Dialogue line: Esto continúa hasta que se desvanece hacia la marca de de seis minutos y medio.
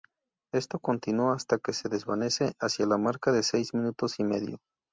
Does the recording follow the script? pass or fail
fail